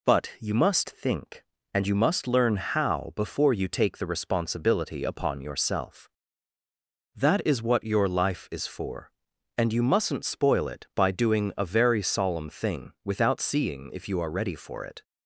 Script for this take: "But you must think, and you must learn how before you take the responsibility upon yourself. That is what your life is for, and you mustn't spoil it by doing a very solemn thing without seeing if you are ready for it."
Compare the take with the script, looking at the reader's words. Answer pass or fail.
pass